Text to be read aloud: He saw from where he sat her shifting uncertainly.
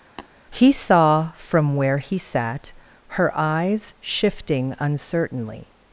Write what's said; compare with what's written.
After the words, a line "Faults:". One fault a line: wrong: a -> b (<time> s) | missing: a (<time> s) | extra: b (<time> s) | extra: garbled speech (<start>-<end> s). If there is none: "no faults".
He saw from where he sat her eyes shifting uncertainly.
Faults:
extra: eyes (3.3 s)